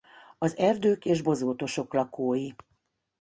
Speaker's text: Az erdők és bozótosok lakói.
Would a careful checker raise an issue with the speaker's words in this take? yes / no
no